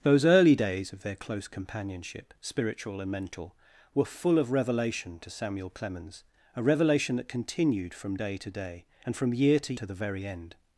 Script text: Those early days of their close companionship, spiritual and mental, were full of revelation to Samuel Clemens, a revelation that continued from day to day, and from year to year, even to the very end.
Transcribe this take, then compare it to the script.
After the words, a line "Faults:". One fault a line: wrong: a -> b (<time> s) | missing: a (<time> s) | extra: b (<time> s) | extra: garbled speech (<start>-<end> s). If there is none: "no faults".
Those early days of their close companionship, spiritual and mental, were full of revelation to Samuel Clemens, a revelation that continued from day to day, and from year to to the very end.
Faults:
missing: year even (9.7 s)